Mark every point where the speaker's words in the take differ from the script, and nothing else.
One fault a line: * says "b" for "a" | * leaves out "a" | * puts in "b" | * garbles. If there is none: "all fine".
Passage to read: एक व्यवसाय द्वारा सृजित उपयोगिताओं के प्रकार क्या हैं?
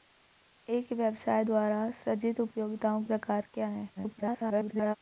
* leaves out "के"
* garbles